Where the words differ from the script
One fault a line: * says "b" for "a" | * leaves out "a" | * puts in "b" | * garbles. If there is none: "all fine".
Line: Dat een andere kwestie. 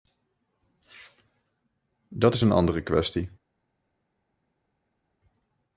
* puts in "is"